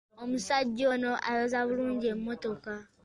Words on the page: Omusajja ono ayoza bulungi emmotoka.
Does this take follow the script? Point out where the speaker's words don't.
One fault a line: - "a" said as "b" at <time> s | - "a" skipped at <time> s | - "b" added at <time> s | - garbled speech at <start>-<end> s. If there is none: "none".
none